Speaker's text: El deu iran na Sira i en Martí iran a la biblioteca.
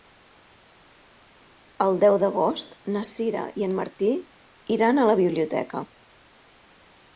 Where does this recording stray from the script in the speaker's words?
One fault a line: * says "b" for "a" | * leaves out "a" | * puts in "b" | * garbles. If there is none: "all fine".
* says "d'agost" for "iran"